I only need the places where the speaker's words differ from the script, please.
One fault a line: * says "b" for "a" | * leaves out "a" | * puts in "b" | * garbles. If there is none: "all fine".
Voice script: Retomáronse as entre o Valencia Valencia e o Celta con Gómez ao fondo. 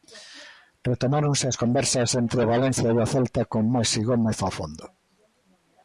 * puts in "conversas"
* leaves out "Valencia"
* puts in "Maxi"